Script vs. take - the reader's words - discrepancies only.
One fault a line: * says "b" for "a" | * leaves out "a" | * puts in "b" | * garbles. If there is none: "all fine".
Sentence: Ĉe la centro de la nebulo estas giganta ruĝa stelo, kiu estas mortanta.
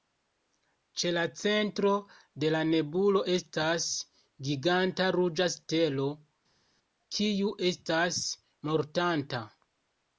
all fine